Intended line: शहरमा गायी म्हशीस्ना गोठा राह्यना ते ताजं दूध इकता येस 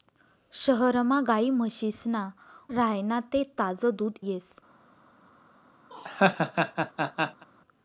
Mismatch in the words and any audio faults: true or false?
true